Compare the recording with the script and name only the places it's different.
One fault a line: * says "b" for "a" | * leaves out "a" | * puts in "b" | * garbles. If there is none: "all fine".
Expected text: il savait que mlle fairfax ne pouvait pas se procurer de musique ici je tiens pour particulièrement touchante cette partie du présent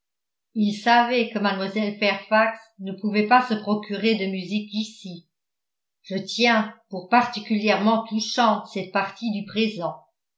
all fine